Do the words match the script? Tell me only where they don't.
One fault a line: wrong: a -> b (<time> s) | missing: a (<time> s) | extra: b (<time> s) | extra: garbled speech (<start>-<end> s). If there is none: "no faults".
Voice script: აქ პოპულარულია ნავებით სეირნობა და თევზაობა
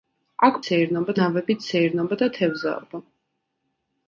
wrong: პოპულარულია -> სეირნობა (0.6 s)